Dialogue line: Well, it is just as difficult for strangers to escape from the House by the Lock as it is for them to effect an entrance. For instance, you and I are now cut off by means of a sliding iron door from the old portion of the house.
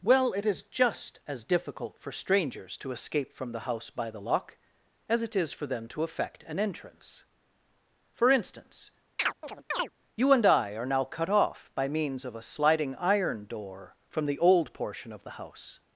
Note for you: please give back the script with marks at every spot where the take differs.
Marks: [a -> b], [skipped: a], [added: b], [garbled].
Well, it is just as difficult for strangers to escape from the House by the Lock as it is for them to effect an entrance. For instance, you and I are now cut off by means of a sliding iron door from the old portion of the house.